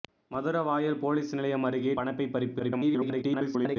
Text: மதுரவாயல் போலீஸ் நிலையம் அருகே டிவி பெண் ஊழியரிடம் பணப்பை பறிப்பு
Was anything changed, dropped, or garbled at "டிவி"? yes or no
yes